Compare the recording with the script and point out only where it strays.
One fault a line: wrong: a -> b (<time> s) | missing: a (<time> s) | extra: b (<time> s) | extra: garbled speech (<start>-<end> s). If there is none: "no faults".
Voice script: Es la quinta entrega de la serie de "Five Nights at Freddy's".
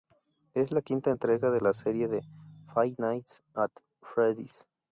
no faults